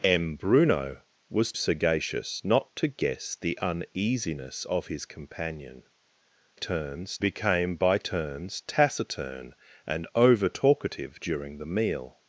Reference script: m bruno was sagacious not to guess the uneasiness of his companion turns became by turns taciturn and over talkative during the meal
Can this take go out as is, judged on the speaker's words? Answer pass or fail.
pass